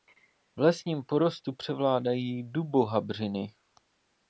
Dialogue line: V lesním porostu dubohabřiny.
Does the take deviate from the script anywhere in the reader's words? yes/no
yes